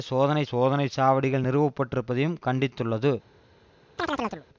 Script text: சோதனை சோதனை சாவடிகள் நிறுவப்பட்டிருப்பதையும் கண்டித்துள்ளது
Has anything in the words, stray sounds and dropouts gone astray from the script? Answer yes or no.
yes